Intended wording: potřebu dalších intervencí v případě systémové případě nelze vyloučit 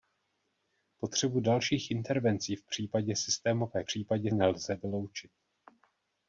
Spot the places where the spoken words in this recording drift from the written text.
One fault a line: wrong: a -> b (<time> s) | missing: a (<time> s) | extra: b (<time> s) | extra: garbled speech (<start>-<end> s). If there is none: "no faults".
no faults